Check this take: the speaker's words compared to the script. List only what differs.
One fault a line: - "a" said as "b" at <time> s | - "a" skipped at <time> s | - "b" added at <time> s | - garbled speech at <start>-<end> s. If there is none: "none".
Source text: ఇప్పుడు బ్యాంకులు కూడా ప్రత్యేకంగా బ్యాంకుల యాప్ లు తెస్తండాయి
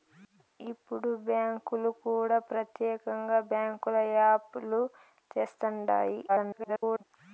- garbled speech at 6.3-7.0 s